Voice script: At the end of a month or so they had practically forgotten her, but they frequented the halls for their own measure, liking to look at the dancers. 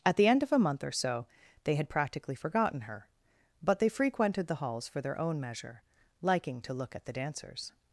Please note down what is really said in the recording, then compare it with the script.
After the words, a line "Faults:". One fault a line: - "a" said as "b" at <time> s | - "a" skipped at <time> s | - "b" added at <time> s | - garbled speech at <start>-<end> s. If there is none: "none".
At the end of a month or so they had practically forgotten her, but they frequented the halls for their own measure, liking to look at the dancers.
Faults:
none